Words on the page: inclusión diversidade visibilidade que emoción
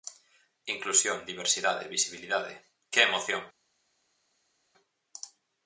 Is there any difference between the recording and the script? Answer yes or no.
no